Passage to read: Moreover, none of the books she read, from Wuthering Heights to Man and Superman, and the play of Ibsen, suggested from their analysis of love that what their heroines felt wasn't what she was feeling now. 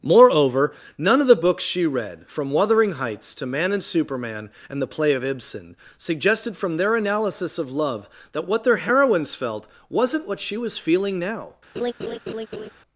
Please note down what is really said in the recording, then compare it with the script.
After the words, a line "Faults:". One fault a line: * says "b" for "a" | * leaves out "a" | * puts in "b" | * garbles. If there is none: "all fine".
Moreover, none of the books she read, from Wuthering Heights to Man and Superman, and the play of Ibsen, suggested from their analysis of love that what their heroines felt wasn't what she was feeling now.
Faults:
all fine